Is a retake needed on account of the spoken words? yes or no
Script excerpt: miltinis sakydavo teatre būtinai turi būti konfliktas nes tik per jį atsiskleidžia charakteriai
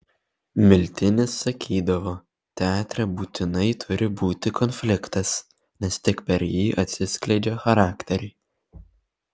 no